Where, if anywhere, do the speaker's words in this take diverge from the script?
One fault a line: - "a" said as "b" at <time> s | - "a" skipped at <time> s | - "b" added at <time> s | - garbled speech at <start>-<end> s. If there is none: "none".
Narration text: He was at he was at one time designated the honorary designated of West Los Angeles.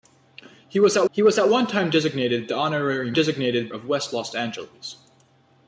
none